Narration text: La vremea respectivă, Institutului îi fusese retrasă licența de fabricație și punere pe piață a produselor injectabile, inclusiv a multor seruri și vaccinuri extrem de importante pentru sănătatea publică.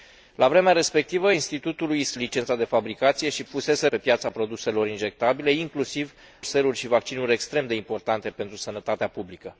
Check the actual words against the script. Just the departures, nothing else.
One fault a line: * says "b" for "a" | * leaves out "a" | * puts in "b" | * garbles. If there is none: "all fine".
* leaves out "îi fusese retrasă"
* says "fusese" for "punere"
* leaves out "a multor"